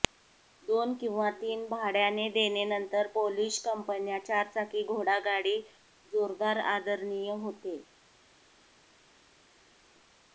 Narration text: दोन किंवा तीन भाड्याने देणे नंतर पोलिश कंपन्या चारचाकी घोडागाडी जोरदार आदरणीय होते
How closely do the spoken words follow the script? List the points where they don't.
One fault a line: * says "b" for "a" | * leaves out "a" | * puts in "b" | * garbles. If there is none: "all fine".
all fine